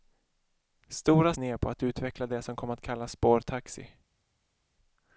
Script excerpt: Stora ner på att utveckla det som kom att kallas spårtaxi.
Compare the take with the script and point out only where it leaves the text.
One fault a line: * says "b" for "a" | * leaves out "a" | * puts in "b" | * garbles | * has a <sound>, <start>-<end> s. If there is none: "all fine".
all fine